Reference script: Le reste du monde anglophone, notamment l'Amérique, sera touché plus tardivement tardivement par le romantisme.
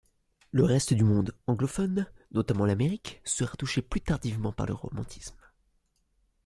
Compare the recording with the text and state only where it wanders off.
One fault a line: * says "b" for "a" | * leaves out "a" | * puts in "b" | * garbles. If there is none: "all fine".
* leaves out "tardivement"